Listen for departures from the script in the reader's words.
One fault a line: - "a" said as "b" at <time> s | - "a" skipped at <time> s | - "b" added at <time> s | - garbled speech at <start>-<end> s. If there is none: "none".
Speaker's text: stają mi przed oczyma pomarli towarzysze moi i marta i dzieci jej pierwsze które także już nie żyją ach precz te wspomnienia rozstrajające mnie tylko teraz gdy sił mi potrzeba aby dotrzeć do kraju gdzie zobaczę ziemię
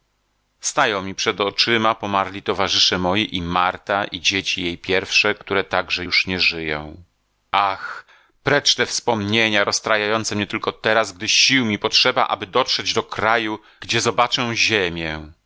none